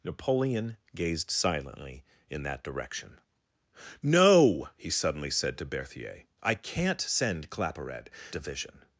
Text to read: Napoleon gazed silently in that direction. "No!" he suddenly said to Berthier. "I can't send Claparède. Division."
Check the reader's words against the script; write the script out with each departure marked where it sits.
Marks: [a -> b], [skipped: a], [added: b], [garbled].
Napoleon gazed silently in that direction. "No!" he suddenly said to Berthier. "I can't send Claparède. Division."